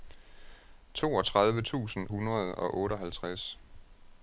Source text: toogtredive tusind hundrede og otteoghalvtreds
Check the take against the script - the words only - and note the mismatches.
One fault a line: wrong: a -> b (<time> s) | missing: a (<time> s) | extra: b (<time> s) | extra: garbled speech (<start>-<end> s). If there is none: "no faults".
no faults